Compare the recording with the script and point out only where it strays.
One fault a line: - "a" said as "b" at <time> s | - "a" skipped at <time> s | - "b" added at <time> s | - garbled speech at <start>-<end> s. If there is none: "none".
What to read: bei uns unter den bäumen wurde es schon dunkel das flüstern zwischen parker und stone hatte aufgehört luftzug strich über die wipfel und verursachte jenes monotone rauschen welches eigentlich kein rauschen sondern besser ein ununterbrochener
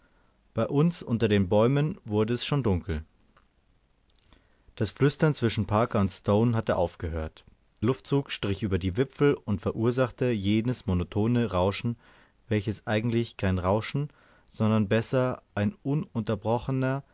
none